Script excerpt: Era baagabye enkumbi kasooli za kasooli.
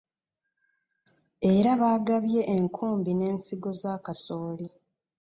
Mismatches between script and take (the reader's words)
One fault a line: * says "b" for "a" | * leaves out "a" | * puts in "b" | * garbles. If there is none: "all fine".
* says "n'ensigo" for "kasooli"